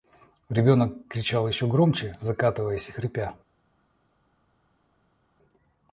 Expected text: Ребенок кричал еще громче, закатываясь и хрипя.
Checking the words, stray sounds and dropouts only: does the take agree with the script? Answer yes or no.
yes